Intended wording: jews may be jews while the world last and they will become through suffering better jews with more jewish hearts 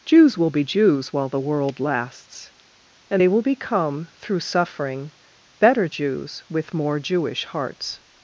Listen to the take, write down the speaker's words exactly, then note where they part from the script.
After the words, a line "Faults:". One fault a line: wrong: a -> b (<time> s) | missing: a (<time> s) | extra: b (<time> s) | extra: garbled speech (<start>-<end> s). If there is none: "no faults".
jews will be jews while the world lasts and they will become through suffering better jews with more jewish hearts
Faults:
wrong: may -> will (0.3 s)
wrong: last -> lasts (1.8 s)